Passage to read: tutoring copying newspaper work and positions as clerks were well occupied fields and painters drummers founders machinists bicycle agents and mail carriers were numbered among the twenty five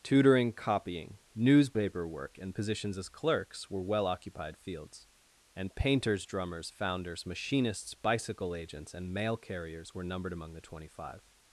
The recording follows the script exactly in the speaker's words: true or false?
true